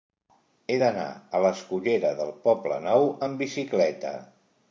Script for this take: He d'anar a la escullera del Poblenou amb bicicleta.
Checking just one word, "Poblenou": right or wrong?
right